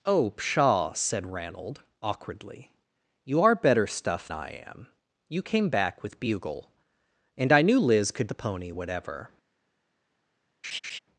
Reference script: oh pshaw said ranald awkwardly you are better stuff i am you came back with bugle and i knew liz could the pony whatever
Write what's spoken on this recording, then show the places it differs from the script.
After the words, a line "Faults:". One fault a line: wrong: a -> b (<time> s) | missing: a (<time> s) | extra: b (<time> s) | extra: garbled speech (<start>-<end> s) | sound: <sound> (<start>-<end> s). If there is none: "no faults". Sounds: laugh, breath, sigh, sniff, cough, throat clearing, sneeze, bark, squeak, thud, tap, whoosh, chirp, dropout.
oh pshaw said ranald awkwardly you are better stuff i am you came back with bugle and i knew liz could the pony whatever
Faults:
sound: laugh (10.6-11.0 s)